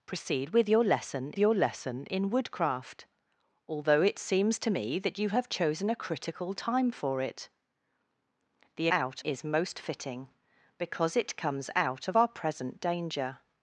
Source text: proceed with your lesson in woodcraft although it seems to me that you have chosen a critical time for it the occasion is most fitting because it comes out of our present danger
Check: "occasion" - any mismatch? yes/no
yes